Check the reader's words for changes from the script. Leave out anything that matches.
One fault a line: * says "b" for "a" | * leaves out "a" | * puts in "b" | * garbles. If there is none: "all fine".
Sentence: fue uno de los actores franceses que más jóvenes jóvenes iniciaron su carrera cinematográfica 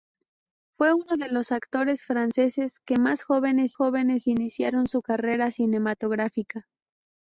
all fine